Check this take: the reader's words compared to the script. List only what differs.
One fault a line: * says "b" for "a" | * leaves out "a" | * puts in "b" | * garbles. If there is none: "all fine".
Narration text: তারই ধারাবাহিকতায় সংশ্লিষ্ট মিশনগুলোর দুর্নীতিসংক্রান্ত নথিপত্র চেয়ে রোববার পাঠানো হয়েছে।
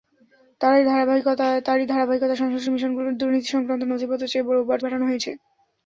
all fine